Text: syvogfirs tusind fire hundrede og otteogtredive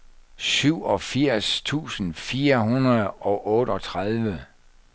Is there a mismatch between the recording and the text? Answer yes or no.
no